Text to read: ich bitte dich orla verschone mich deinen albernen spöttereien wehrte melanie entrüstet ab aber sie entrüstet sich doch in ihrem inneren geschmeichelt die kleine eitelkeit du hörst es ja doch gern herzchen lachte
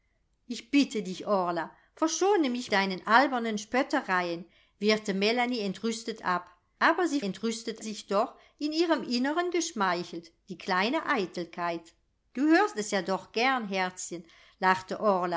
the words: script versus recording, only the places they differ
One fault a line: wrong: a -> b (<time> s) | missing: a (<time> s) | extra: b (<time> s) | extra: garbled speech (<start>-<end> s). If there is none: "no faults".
no faults